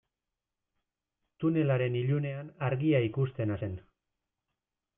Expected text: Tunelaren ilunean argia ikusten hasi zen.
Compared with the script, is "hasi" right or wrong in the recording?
wrong